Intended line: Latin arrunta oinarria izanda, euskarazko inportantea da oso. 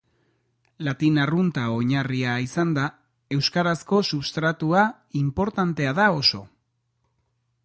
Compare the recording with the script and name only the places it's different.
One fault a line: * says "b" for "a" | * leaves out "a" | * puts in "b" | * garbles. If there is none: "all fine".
* puts in "substratua"